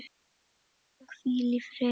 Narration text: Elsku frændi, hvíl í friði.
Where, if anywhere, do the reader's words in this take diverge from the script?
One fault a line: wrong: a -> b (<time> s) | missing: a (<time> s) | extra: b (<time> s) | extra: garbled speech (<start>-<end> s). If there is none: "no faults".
missing: frændi (1.1 s)